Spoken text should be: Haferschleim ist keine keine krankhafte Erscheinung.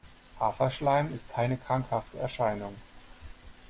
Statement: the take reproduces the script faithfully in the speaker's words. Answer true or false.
false